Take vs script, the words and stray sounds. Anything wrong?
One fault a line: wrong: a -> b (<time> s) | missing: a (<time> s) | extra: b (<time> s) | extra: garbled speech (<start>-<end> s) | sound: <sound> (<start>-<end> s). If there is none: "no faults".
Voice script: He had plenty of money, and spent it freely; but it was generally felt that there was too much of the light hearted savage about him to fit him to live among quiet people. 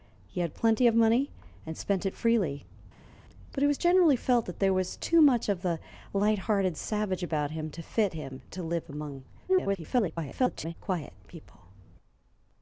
extra: garbled speech (9.5-10.7 s)